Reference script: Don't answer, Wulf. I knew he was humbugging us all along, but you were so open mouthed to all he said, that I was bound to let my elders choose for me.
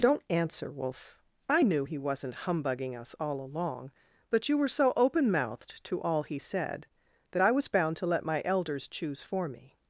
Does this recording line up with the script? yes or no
no